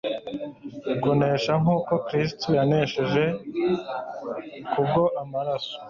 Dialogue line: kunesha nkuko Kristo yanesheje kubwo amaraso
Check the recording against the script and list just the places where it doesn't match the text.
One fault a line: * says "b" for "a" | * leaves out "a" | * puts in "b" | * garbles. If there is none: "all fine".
all fine